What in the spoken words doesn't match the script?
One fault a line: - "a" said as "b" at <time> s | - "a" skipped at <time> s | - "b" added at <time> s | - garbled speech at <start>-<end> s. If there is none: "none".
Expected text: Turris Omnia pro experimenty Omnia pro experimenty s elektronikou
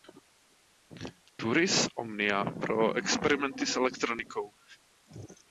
- "Omnia pro experimenty" skipped at 3.6 s